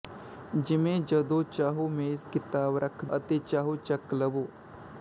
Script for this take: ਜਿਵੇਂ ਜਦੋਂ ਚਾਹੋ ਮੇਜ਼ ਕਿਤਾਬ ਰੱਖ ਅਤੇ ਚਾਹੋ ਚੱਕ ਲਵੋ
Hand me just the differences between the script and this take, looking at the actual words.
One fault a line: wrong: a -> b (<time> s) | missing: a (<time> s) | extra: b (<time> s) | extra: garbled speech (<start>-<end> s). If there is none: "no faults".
no faults